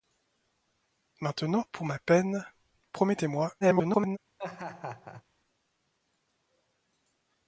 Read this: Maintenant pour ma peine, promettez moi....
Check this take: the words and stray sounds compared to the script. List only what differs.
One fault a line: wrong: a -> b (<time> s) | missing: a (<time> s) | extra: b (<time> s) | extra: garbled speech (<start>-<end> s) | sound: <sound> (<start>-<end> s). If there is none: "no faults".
extra: garbled speech (3.6-4.2 s)
sound: laugh (4.4-5.2 s)